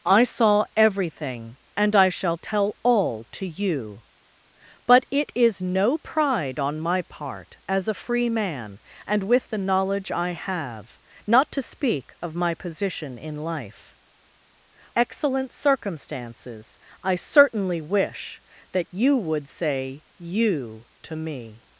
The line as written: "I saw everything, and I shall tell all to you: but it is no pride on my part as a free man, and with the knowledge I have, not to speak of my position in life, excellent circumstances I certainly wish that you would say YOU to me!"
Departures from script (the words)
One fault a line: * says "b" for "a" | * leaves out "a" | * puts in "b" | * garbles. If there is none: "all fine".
all fine